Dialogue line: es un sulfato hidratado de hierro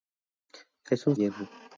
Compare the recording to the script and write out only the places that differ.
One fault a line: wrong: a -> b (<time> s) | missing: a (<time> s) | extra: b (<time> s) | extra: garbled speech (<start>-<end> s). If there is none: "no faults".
missing: sulfato hidratado de (1.1 s)